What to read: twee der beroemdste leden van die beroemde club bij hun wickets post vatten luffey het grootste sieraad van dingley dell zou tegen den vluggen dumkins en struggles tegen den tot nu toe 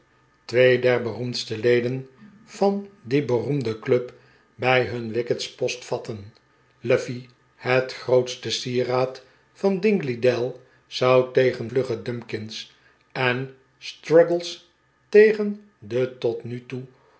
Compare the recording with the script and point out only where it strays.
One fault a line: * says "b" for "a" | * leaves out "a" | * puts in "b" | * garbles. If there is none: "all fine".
* leaves out "den"